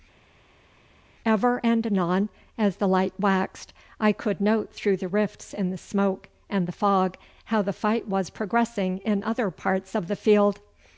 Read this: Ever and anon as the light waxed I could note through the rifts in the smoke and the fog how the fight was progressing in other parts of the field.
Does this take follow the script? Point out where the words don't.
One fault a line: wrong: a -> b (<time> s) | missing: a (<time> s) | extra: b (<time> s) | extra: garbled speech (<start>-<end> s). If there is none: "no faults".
no faults